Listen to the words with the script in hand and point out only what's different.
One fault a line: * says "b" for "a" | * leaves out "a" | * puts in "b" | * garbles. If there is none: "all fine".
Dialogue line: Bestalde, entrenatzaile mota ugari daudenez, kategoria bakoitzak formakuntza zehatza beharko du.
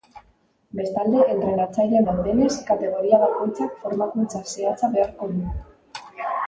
* leaves out "mota ugari"